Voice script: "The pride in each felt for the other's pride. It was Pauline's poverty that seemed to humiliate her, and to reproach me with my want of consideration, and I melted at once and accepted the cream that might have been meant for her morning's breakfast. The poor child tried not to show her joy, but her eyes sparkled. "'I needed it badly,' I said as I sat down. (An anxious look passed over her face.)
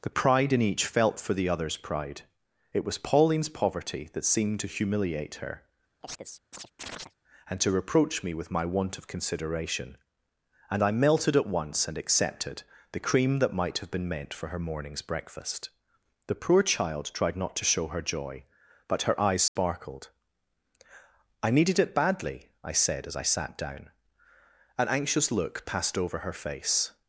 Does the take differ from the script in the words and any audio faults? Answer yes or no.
yes